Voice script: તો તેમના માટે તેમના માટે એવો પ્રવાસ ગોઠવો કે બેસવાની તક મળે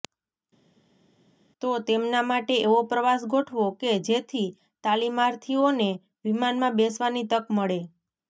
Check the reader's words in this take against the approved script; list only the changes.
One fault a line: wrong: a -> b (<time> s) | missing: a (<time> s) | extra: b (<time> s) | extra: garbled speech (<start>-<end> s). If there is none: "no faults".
missing: તેમના માટે (2.6 s)
extra: જેથી તાલીમાર્થીઓને વિમાનમાં (4.1 s)